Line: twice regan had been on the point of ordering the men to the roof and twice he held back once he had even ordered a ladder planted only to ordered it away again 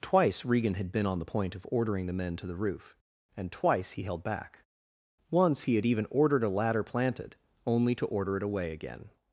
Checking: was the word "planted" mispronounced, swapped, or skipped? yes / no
no